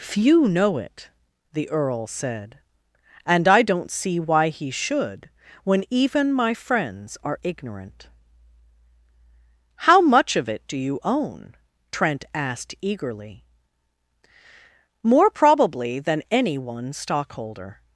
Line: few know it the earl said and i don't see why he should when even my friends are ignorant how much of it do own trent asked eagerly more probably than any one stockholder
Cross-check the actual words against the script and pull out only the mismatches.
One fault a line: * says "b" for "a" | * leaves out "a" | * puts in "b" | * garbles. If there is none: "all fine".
* puts in "you"